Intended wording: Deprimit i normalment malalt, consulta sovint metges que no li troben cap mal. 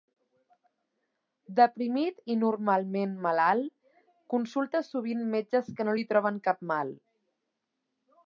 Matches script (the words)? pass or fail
pass